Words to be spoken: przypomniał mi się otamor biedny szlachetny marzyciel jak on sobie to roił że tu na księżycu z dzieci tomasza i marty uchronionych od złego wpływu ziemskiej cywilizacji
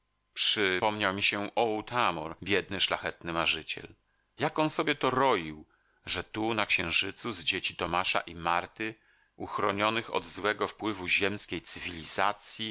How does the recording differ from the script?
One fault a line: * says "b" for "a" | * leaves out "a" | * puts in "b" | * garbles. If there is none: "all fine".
all fine